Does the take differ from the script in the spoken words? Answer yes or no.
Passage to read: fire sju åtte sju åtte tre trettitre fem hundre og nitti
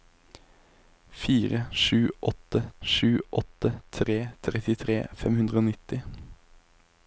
no